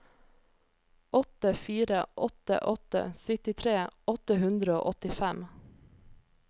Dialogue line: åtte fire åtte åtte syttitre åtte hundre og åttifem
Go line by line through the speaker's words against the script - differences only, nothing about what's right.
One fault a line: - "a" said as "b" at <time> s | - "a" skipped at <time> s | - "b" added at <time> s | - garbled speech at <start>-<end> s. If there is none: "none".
none